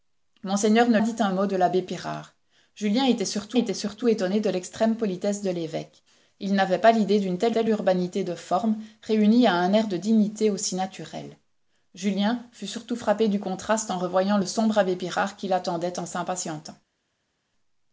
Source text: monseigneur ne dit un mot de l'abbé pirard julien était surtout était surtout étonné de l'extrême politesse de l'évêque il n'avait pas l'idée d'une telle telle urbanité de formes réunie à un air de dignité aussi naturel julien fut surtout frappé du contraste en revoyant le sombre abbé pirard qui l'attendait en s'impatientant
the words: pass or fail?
pass